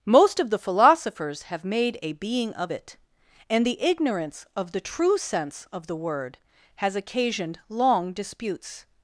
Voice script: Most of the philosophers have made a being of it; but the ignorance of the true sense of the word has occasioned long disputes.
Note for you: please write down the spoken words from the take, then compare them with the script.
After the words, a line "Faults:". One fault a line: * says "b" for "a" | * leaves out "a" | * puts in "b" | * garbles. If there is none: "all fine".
Most of the philosophers have made a being of it; and the ignorance of the true sense of the word has occasioned long disputes.
Faults:
* says "and" for "but"